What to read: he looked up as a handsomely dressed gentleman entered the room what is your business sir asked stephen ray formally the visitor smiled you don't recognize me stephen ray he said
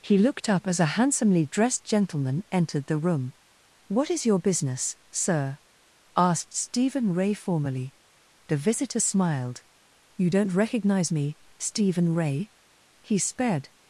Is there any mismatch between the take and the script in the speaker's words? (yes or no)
yes